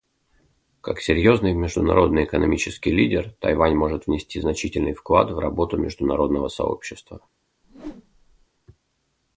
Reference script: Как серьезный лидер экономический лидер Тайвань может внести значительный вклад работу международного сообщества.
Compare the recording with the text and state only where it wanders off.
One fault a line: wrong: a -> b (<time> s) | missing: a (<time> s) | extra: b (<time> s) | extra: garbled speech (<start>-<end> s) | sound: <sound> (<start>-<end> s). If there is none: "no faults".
wrong: лидер -> международный (1.5 s)
extra: в (5.3 s)
sound: whoosh (7.6-8.5 s)